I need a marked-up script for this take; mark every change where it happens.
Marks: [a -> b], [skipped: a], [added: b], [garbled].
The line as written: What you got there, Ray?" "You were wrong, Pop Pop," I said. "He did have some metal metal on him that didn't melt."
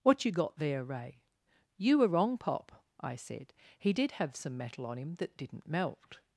What you got there, Ray?" "You were wrong, Pop [skipped: Pop,"] I said. "He did have some metal [skipped: metal] on him that didn't melt."